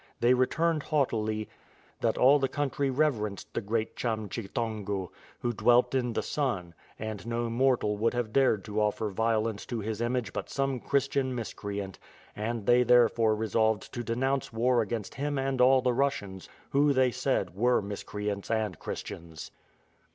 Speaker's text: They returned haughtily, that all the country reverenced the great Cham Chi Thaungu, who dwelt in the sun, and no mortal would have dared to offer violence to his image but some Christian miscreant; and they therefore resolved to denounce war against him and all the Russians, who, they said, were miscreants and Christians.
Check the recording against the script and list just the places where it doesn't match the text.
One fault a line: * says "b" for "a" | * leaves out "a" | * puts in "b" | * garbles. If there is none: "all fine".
all fine